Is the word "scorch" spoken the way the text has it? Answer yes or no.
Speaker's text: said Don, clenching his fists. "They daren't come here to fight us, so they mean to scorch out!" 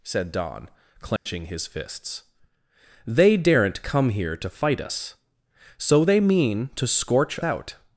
yes